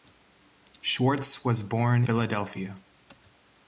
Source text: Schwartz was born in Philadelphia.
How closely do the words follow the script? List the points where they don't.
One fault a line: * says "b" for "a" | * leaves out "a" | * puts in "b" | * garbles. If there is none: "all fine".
* leaves out "in"